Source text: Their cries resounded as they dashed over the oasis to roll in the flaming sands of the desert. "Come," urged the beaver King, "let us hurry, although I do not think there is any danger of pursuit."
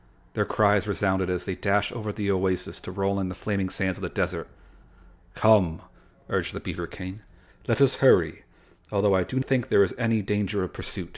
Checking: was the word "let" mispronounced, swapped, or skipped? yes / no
no